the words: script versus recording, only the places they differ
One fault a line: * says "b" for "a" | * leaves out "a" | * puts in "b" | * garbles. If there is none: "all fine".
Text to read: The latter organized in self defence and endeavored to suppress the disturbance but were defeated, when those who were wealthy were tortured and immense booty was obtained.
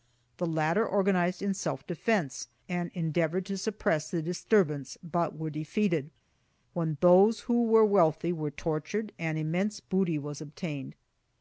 all fine